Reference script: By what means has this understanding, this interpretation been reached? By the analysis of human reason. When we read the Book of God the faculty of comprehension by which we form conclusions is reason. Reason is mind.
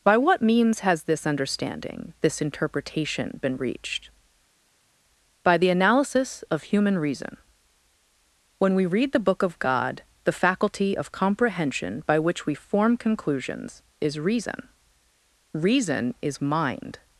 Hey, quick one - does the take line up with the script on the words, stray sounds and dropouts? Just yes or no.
yes